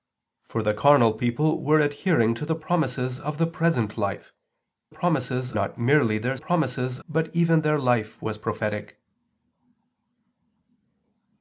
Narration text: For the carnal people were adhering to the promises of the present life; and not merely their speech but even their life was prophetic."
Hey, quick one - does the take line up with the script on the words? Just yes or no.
no